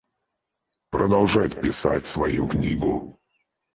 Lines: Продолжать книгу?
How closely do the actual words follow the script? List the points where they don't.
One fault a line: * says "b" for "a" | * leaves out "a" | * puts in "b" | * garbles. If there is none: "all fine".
* puts in "писать свою"